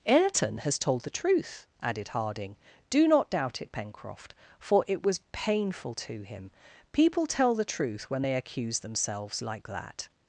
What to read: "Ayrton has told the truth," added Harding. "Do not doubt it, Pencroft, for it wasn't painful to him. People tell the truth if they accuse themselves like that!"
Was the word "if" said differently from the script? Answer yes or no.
yes